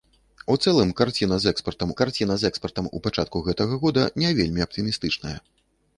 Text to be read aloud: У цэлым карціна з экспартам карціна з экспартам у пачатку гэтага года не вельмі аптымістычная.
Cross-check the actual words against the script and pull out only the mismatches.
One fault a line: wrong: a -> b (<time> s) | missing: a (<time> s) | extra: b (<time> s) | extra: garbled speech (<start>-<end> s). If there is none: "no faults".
no faults